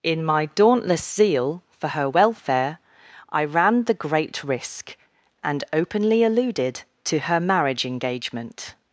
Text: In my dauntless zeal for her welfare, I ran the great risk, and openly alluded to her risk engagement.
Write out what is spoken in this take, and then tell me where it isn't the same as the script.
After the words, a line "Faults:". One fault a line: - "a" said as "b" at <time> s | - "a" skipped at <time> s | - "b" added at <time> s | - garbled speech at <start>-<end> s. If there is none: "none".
In my dauntless zeal for her welfare, I ran the great risk, and openly alluded to her marriage engagement.
Faults:
- "risk" said as "marriage" at 7.4 s